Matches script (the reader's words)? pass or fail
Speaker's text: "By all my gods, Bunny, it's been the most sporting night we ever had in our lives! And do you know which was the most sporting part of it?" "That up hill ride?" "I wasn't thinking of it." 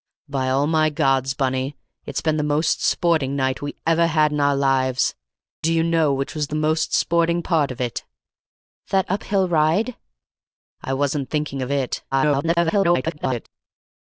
fail